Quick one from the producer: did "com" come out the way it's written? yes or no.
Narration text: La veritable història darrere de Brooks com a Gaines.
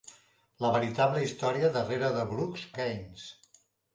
no